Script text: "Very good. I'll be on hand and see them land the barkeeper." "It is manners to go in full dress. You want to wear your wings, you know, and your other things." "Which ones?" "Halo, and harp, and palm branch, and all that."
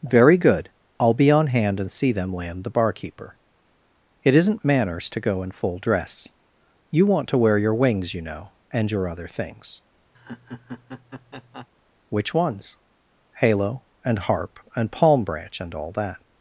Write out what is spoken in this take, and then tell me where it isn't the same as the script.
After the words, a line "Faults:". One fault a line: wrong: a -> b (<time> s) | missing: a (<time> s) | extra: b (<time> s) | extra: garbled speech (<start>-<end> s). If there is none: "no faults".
"Very good. I'll be on hand and see them land the barkeeper." "It isn't manners to go in full dress. You want to wear your wings, you know, and your other things." "Which ones?" "Halo, and harp, and palm branch, and all that."
Faults:
wrong: is -> isn't (4.3 s)